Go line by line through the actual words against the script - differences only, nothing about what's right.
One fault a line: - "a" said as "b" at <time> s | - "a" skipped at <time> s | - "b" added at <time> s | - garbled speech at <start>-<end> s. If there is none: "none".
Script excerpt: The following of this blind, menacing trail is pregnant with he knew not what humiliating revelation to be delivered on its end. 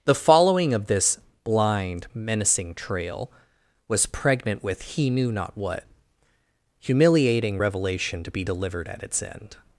- "is" said as "was" at 3.9 s
- "on" said as "at" at 8.9 s